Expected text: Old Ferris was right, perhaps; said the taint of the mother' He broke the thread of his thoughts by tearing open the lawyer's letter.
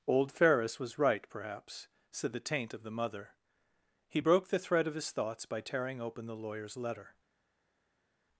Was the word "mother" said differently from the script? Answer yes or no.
no